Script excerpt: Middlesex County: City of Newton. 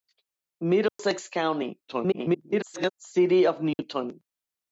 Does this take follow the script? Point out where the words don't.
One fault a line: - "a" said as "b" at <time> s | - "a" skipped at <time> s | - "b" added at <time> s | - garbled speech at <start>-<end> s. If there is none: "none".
- garbled speech at 1.9-2.9 s